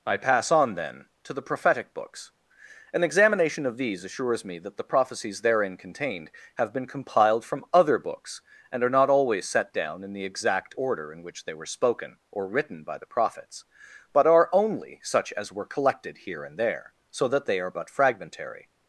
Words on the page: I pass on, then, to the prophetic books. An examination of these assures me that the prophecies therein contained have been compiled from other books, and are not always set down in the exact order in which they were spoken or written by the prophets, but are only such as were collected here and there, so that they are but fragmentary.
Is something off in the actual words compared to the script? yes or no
no